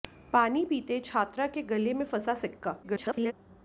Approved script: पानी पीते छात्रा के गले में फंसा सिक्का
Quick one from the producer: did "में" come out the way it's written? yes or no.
yes